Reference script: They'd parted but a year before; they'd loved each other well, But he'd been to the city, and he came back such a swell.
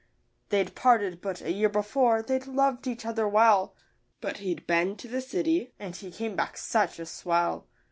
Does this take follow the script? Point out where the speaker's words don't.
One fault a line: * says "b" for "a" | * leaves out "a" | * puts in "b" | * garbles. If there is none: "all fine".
all fine